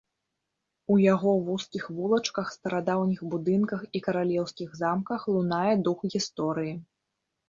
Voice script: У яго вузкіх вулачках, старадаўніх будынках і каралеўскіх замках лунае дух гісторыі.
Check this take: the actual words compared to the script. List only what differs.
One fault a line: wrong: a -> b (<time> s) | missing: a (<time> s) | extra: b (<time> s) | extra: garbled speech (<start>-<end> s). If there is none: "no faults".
no faults